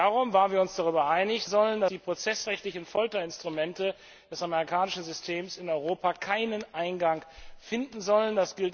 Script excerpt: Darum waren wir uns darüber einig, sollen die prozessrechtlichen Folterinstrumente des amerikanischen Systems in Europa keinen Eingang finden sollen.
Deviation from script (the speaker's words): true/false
false